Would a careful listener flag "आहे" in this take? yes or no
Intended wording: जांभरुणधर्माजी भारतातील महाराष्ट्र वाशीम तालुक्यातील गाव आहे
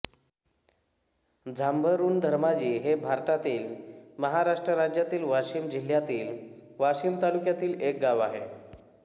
no